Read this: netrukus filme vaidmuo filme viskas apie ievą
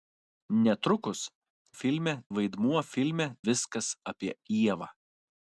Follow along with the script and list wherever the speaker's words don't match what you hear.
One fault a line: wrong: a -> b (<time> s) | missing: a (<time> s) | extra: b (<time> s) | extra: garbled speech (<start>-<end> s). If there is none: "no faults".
no faults